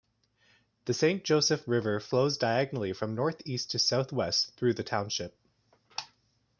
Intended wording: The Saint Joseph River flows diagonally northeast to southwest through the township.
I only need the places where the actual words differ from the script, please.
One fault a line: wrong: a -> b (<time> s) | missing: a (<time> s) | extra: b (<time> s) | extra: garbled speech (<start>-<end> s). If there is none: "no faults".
extra: from (2.9 s)